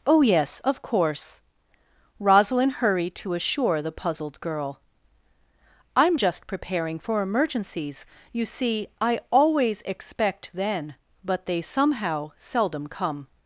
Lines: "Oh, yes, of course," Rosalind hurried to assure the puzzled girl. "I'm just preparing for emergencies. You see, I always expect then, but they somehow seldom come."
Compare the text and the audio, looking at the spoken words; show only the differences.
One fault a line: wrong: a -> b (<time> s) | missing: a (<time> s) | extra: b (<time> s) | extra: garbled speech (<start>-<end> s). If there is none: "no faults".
no faults